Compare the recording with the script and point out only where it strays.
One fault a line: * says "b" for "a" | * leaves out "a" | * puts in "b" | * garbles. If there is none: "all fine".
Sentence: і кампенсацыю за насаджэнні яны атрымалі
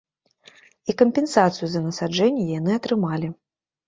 all fine